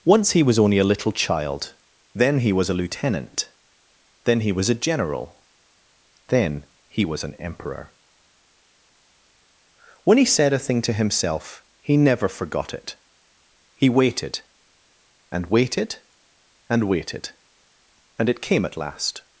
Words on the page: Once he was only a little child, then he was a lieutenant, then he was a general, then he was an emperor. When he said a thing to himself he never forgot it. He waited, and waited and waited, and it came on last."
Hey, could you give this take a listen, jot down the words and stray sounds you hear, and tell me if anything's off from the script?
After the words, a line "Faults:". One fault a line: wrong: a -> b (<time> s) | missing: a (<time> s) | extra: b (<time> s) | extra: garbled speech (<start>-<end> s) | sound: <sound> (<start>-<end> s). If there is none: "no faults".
Once he was only a little child, then he was a lieutenant, then he was a general, then he was an emperor. When he said a thing to himself he never forgot it. He waited, and waited and waited, and it came at last."
Faults:
wrong: on -> at (18.6 s)